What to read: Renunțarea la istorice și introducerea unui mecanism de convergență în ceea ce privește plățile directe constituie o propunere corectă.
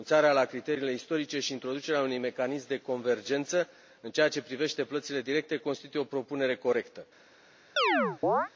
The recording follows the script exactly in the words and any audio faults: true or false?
false